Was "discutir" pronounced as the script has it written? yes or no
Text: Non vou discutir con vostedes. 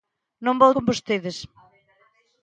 no